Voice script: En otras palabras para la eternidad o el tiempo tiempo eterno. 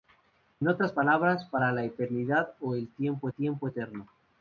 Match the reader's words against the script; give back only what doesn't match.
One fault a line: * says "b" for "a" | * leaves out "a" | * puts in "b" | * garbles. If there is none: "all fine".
all fine